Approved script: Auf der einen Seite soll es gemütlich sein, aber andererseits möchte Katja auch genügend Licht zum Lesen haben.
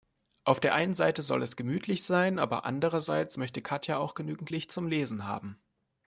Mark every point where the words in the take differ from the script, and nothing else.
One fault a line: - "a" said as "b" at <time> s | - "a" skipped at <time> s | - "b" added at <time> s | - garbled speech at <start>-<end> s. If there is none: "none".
none